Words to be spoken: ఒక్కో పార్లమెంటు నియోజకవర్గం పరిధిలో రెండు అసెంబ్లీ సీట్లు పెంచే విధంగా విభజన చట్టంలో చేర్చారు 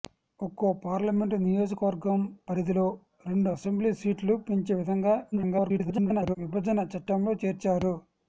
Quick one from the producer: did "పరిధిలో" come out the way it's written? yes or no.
yes